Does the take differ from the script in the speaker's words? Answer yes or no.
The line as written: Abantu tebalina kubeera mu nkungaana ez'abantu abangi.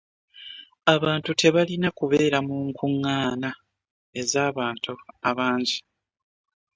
no